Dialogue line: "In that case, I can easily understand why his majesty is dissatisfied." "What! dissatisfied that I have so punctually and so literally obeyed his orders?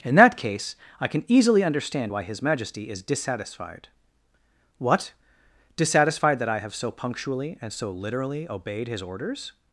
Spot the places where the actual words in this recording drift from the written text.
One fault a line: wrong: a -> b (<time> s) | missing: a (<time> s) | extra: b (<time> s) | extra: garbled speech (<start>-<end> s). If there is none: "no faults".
no faults